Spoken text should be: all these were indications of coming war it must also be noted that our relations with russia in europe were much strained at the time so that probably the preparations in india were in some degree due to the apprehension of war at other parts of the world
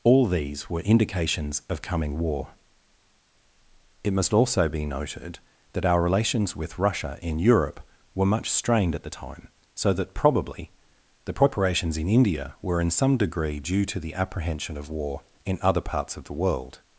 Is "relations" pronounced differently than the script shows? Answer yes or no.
no